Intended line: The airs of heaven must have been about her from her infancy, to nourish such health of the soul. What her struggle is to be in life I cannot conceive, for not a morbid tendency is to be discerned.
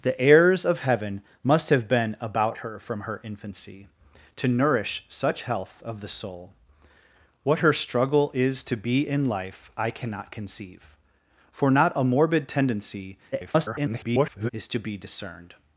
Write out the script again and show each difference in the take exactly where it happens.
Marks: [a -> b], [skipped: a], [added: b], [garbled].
The airs of heaven must have been about her from her infancy, to nourish such health of the soul. What her struggle is to be in life I cannot conceive, for not a morbid tendency [garbled] is to be discerned.